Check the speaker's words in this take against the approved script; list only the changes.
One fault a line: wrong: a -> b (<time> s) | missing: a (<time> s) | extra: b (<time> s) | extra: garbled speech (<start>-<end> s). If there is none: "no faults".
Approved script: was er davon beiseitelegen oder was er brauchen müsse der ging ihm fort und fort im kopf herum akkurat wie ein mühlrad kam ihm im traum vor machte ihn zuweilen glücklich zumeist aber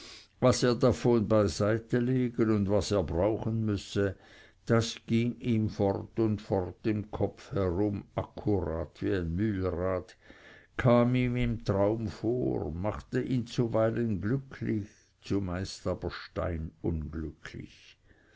wrong: oder -> und (2.5 s)
wrong: der -> das (4.7 s)